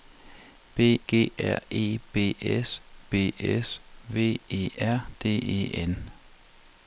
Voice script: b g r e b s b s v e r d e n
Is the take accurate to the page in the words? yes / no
yes